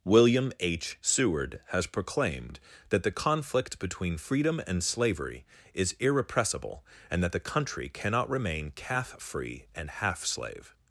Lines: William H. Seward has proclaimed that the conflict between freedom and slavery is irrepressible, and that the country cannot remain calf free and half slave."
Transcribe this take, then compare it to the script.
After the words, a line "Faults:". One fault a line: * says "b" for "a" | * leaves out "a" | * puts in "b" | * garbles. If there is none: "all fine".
William H. Seward has proclaimed that the conflict between freedom and slavery is irrepressible, and that the country cannot remain calf free and half slave."
Faults:
all fine